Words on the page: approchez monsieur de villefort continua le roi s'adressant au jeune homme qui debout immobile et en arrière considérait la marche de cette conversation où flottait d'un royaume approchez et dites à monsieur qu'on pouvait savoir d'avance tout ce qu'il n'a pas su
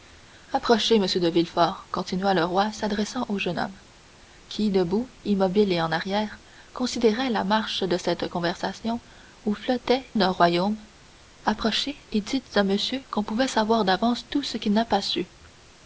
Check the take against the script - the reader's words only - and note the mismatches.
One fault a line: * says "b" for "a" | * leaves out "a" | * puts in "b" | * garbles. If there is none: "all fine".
all fine